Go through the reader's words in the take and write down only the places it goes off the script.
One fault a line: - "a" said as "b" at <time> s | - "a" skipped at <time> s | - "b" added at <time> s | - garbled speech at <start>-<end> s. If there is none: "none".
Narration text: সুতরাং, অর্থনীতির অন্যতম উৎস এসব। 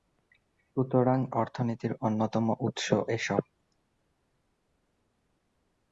none